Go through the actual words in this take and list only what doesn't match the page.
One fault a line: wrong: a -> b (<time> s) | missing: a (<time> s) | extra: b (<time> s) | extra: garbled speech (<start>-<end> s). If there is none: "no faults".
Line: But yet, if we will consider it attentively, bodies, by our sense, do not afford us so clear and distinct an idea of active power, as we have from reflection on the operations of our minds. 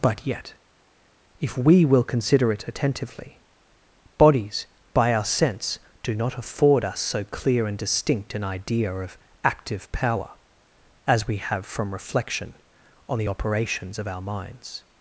no faults